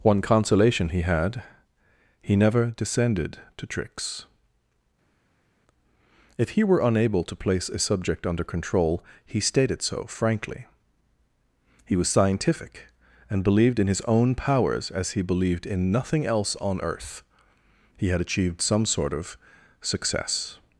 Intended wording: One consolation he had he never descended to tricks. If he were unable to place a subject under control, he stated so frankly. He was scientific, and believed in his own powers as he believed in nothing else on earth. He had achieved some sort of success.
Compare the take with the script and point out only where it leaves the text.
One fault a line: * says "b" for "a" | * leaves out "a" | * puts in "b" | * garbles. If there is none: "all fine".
all fine